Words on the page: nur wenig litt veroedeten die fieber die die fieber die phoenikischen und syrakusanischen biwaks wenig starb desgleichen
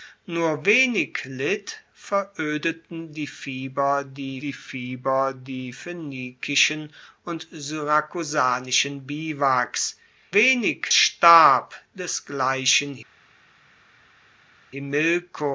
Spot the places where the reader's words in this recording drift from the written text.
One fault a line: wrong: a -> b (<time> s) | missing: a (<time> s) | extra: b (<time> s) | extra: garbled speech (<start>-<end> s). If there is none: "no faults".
no faults